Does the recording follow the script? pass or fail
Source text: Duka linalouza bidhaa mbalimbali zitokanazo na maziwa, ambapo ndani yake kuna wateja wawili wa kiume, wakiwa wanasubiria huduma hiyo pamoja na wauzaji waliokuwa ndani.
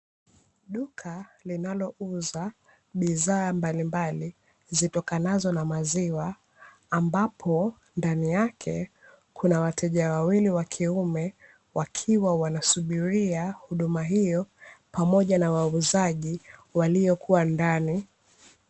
pass